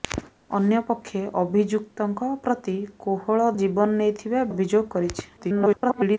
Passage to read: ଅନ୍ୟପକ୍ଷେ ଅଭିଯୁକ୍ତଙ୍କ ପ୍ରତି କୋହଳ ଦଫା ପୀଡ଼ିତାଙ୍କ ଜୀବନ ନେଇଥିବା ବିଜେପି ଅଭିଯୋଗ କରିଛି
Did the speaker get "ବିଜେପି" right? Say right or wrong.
wrong